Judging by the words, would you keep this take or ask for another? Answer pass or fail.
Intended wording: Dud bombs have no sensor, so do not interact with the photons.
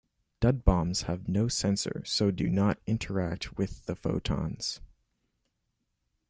pass